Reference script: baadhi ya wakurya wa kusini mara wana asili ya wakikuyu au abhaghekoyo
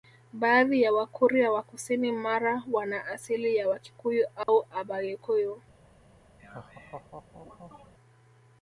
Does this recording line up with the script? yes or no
yes